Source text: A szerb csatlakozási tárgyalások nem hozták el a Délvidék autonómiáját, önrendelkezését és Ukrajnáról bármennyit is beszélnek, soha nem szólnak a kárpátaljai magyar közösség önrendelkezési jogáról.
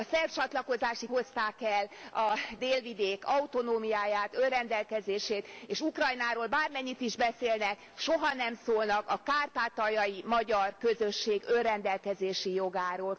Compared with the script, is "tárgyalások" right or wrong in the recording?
wrong